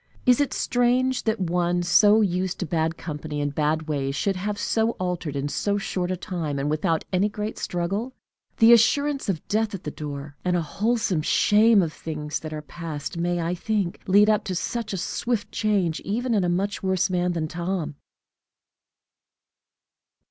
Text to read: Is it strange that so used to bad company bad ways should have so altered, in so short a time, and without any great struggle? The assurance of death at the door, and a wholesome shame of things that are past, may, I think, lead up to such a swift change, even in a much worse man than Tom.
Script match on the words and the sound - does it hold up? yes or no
no